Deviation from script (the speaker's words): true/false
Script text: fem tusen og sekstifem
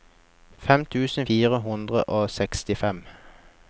true